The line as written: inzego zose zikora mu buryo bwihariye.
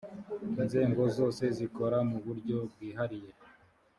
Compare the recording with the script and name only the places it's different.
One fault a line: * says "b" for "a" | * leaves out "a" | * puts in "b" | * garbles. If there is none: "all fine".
all fine